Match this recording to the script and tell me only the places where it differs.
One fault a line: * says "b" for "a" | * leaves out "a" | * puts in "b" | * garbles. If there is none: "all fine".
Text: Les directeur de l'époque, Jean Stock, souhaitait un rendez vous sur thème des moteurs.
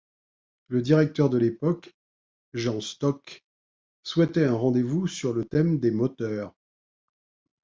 * says "Le" for "Les"
* puts in "le"